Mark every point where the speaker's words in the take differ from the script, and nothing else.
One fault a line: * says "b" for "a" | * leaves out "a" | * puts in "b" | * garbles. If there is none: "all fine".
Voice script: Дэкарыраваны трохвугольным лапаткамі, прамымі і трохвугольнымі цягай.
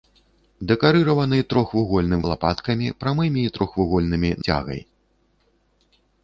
all fine